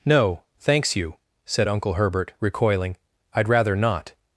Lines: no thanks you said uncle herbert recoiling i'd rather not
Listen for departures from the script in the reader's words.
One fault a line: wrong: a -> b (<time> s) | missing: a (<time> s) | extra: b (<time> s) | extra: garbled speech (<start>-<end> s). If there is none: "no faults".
no faults